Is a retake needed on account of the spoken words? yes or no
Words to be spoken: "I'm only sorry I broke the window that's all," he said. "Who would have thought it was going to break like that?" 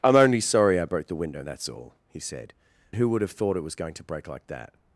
no